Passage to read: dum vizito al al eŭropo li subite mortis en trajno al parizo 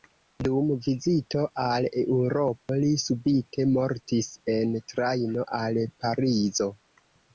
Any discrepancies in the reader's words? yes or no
yes